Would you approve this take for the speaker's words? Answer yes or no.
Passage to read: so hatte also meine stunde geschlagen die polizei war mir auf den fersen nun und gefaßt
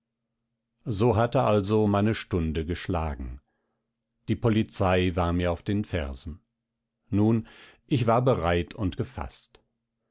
no